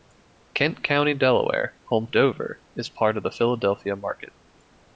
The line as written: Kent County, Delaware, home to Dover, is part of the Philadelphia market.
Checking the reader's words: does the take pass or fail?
fail